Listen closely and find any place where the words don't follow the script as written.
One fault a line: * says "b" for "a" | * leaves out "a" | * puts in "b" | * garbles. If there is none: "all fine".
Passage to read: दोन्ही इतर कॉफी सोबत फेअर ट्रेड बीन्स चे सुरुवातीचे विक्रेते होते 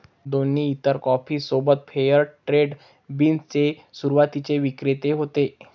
all fine